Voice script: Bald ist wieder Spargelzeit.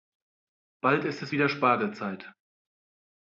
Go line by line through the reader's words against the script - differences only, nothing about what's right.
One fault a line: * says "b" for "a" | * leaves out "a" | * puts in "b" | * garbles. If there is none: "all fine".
* puts in "es"